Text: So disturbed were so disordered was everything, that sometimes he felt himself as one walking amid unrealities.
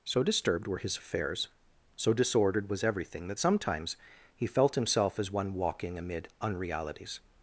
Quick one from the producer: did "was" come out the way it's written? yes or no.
yes